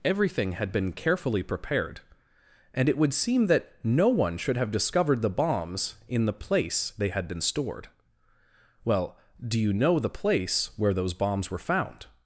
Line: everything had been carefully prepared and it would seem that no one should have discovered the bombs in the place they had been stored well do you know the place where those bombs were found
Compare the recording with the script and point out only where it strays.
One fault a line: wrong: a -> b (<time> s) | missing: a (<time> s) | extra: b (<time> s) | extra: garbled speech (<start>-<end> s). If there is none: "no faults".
no faults